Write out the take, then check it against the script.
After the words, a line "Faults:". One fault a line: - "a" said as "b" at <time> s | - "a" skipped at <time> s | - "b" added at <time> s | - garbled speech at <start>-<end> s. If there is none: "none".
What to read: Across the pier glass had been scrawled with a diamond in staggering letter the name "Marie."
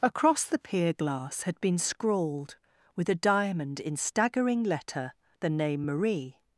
Across the pier glass had been scrawled with a diamond in staggering letter the name "Marie."
Faults:
none